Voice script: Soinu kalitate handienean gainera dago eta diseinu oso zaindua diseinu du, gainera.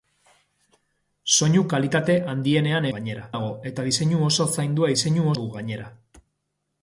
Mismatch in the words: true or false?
false